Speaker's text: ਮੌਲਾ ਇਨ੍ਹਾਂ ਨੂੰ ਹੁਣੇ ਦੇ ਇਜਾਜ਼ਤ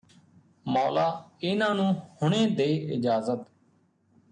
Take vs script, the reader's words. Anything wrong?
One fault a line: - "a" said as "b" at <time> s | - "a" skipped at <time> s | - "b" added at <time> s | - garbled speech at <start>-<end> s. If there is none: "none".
none